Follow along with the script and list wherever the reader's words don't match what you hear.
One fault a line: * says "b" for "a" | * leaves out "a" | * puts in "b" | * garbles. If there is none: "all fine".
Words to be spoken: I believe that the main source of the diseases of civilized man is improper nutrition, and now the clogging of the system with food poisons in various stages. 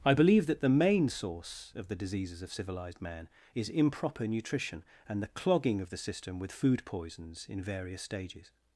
* leaves out "now"